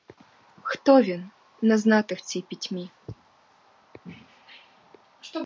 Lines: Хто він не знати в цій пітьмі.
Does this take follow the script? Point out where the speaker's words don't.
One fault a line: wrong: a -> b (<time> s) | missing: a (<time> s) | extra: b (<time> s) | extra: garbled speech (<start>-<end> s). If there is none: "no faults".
no faults